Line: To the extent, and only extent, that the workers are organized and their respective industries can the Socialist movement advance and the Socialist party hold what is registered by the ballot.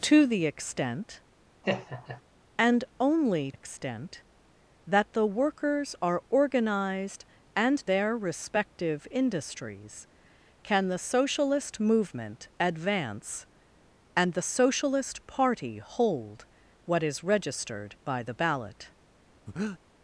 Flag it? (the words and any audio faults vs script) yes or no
yes